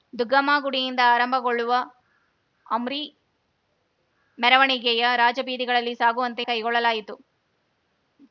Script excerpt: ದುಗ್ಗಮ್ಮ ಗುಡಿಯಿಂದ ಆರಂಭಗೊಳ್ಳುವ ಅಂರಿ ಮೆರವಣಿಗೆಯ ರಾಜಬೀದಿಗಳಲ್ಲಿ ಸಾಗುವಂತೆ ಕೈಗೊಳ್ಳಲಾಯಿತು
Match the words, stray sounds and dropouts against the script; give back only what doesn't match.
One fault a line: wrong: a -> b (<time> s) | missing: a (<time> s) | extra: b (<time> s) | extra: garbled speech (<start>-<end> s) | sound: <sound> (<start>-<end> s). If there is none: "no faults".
no faults